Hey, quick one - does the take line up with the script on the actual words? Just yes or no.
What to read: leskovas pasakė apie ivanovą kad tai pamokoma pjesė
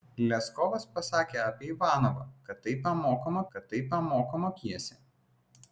no